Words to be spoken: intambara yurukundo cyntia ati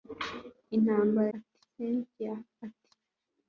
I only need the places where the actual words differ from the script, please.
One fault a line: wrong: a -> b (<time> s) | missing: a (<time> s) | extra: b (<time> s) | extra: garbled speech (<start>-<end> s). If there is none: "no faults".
wrong: yurukundo -> ati (1.3 s)